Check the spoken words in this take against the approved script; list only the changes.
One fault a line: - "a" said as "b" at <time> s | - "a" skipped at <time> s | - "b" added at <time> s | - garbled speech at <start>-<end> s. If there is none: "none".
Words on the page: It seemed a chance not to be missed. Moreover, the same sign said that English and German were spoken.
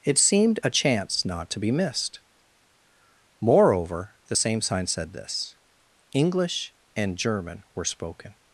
- "that" said as "this" at 5.1 s